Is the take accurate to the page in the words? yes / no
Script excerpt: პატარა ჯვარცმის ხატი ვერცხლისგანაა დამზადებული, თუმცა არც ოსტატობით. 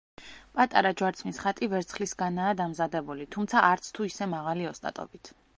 no